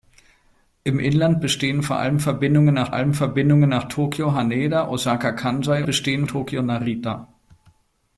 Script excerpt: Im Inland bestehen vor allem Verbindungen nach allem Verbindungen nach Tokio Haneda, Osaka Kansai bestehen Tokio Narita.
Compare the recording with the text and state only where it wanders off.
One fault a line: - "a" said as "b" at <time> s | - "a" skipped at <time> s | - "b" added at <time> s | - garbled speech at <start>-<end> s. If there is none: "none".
none